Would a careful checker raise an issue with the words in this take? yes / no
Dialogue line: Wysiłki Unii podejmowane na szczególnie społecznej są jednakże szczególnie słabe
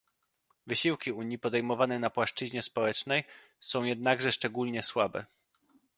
yes